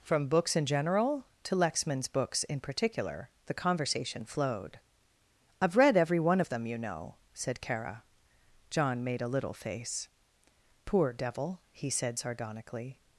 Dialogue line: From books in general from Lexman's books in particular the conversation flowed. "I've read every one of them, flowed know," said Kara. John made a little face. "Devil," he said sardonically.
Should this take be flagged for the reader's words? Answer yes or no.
yes